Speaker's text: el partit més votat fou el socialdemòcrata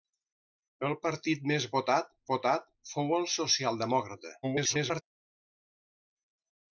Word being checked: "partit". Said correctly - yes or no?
yes